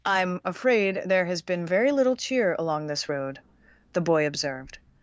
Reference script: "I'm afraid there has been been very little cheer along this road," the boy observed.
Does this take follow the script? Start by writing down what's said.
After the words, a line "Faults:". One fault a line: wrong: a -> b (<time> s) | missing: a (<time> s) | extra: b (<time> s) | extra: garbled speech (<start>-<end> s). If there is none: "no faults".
"I'm afraid there has been very little cheer along this road," the boy observed.
Faults:
missing: been (1.6 s)